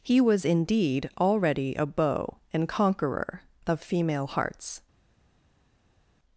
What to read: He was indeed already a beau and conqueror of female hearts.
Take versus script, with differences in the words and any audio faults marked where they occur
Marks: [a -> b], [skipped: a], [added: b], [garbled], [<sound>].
He was indeed already a beau and conqueror of female hearts.